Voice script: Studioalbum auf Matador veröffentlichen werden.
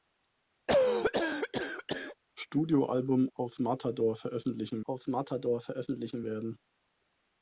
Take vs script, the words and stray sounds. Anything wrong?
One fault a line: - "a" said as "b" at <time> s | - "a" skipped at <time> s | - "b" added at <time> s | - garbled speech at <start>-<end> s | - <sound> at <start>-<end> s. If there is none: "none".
- cough at 0.7-2.2 s
- "auf Matador veröffentlichen" added at 4.8 s